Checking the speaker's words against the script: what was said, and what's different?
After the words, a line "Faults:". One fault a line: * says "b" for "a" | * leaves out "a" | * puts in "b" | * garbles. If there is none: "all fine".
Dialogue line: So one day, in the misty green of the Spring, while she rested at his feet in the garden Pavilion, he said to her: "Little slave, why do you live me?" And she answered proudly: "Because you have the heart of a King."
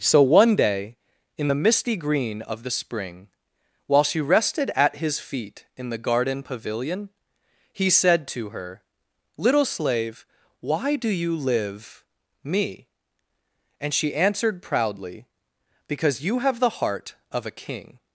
So one day, in the misty green of the Spring, while she rested at his feet in the garden Pavilion, he said to her: "Little slave, why do you live me?" And she answered proudly: "Because you have the heart of a King."
Faults:
all fine